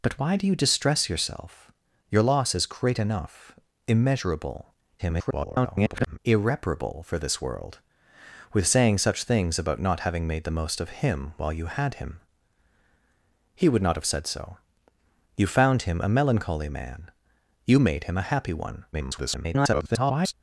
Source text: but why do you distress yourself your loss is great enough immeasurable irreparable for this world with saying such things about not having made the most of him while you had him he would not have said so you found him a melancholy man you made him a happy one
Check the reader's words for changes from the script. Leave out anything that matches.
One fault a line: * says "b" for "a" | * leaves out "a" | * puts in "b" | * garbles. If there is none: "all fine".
* garbles
* garbles